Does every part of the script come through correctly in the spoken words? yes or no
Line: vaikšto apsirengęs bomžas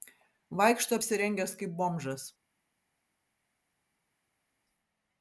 no